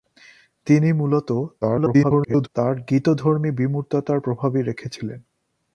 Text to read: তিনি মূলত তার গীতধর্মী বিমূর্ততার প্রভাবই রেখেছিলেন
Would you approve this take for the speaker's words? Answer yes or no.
no